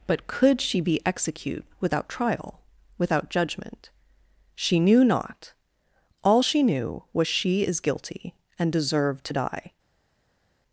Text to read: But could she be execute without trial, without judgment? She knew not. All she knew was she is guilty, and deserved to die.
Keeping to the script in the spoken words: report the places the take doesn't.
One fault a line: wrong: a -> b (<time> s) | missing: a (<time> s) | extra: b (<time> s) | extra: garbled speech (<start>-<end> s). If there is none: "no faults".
no faults